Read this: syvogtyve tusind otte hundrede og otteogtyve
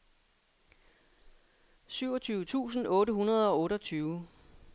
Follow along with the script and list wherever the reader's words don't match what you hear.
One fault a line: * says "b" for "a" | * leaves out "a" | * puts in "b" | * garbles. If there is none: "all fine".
all fine